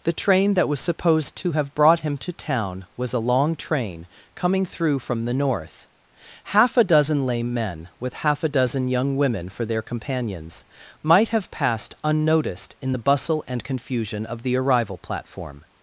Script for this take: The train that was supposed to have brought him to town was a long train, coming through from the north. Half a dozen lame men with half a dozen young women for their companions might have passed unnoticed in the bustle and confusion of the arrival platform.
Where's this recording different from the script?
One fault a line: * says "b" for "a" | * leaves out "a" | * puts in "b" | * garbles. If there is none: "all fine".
all fine